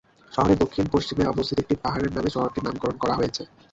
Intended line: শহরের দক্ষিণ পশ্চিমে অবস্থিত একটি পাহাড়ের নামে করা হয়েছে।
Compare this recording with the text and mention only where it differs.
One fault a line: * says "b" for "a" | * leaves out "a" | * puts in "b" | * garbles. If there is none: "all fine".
* puts in "শহরটির নামকরণ"